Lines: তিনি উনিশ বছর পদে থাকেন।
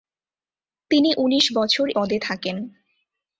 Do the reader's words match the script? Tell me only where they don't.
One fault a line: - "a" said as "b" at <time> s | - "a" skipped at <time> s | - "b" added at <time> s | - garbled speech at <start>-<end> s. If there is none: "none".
none